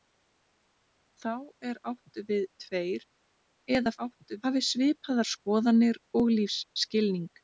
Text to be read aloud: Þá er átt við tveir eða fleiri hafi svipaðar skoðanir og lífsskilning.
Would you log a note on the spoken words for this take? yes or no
yes